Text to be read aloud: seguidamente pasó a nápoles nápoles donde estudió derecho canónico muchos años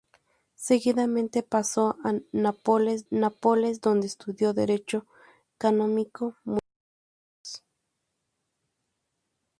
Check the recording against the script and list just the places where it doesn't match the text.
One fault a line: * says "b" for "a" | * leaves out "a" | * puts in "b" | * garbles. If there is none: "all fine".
all fine